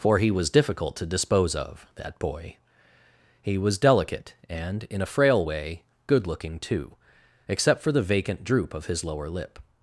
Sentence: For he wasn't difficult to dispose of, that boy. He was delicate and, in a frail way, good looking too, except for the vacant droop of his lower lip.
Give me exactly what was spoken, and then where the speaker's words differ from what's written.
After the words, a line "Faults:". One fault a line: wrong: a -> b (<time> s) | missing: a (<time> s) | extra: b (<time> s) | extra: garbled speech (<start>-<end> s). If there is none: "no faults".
For he was difficult to dispose of, that boy. He was delicate and, in a frail way, good looking too, except for the vacant droop of his lower lip.
Faults:
wrong: wasn't -> was (0.3 s)